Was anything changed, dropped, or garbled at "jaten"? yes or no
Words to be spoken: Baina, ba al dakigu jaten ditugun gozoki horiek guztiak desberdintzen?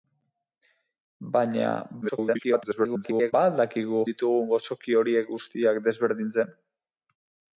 yes